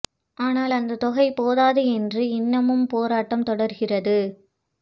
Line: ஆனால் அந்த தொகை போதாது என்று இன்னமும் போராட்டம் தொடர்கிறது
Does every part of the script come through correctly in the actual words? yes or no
yes